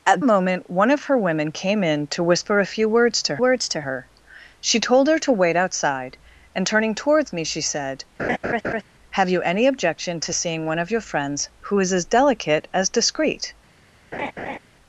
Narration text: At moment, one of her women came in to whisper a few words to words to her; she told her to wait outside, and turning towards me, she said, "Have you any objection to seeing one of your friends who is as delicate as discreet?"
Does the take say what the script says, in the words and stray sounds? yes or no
no